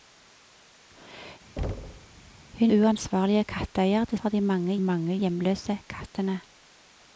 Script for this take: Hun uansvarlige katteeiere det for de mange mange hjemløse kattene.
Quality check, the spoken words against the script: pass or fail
pass